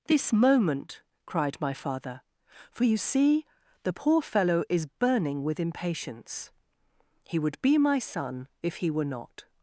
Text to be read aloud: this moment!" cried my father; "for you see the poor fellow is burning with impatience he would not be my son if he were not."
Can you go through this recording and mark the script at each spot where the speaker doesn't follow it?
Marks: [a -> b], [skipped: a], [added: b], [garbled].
this moment!" cried my father; "for you see the poor fellow is burning with impatience he would [skipped: not] be my son if he were not."